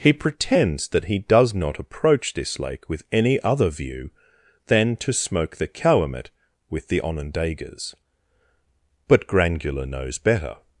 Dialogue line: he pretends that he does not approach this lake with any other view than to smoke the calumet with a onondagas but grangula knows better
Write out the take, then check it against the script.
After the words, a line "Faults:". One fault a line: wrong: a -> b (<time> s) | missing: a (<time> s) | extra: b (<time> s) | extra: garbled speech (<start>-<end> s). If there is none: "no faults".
he pretends that he does not approach this lake with any other view than to smoke the calumet with the onondagas but grangula knows better
Faults:
wrong: a -> the (6.9 s)